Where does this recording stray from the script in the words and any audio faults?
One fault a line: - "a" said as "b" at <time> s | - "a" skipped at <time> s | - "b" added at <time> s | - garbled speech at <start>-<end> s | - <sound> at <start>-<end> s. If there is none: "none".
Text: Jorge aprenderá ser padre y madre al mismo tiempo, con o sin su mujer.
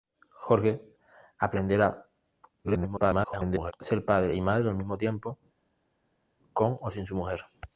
- garbled speech at 2.6-3.7 s